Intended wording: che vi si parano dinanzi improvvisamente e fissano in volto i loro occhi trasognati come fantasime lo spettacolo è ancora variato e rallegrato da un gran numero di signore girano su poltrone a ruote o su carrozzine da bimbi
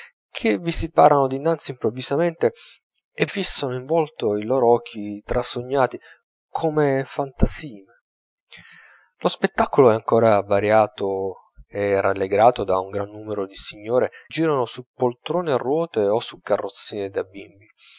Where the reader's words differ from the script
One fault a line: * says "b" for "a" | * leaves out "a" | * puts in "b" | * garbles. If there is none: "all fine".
all fine